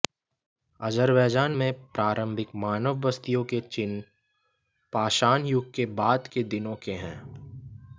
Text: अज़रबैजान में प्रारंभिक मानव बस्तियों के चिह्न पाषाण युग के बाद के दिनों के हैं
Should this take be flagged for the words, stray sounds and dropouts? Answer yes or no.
no